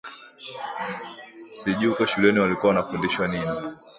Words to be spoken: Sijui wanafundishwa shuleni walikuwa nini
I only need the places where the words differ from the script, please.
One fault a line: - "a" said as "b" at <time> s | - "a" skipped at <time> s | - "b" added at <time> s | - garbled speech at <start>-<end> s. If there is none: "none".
- "wanafundishwa" said as "huko" at 1.9 s
- "wanafundishwa" added at 2.7 s